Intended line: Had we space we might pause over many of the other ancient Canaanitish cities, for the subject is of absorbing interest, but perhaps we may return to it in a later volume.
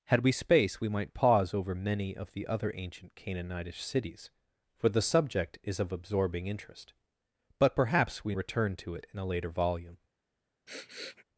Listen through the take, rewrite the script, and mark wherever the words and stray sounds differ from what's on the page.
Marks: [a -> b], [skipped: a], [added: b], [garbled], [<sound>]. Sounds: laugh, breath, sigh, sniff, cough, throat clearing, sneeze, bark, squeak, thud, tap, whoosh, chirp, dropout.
Had we space we might pause over many of the other ancient Canaanitish cities, for the subject is of absorbing interest, but perhaps we [skipped: may] return to it in a later volume. [sniff]